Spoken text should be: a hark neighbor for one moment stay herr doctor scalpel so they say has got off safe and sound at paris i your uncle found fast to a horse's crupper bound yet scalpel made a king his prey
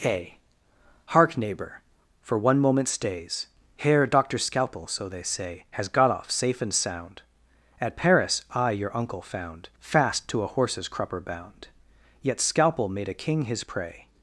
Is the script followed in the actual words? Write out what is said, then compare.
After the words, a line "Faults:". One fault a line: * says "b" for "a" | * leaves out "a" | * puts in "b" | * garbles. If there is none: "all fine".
a hark neighbor for one moment stays herr doctor scalpel so they say has got off safe and sound at paris i your uncle found fast to a horse's crupper bound yet scalpel made a king his prey
Faults:
* says "stays" for "stay"